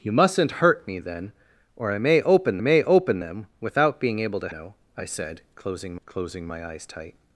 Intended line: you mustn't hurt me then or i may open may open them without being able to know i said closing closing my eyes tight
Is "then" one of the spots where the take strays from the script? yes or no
no